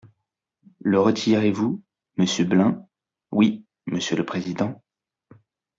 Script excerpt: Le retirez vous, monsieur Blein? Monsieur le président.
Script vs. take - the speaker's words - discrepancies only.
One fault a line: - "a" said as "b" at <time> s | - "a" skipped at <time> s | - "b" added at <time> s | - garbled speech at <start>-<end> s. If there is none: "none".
- "Oui" added at 3.3 s